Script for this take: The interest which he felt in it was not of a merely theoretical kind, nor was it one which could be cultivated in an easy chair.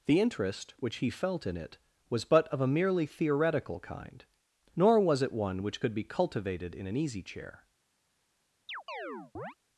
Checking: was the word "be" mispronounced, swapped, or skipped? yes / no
no